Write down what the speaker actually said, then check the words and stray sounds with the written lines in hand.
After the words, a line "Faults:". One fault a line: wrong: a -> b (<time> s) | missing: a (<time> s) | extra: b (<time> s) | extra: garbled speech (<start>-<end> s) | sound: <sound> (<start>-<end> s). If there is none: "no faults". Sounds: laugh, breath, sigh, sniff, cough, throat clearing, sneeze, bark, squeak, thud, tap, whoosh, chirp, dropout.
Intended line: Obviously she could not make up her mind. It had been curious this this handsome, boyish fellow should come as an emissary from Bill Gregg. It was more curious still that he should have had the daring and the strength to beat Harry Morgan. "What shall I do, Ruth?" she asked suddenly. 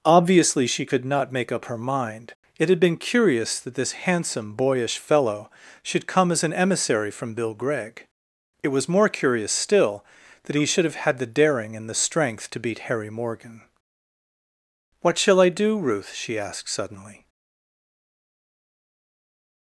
Obviously she could not make up her mind. It had been curious that this handsome, boyish fellow should come as an emissary from Bill Gregg. It was more curious still that he should have had the daring and the strength to beat Harry Morgan. "What shall I do, Ruth?" she asked suddenly.
Faults:
wrong: this -> that (3.6 s)